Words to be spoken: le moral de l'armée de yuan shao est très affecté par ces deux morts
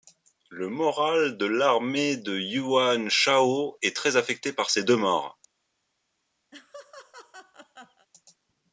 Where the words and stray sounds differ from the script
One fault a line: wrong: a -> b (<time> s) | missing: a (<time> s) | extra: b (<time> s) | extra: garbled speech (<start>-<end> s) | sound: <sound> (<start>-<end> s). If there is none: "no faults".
sound: laugh (6.5-8.1 s)